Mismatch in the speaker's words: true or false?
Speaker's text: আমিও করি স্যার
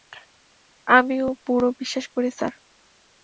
true